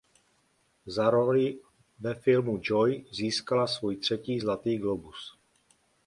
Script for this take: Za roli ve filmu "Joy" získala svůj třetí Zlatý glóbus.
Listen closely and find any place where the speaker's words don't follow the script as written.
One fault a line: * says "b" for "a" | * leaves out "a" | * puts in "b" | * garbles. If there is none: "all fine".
all fine